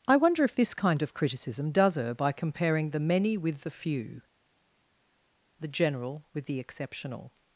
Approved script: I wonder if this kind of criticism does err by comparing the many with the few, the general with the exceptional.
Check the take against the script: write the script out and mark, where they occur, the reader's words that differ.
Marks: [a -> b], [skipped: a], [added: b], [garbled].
I wonder if this kind of criticism does err by comparing the many with the few, the general with the exceptional.